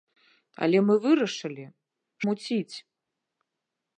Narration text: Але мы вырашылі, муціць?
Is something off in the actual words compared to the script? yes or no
no